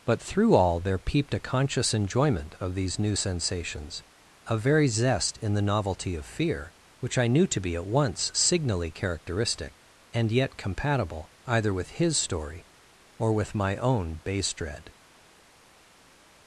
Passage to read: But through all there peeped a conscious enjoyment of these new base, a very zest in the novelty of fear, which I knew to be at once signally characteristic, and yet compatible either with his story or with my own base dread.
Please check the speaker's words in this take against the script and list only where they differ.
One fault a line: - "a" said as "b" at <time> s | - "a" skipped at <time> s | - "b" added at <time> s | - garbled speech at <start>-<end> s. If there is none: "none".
- "base" said as "sensations" at 3.1 s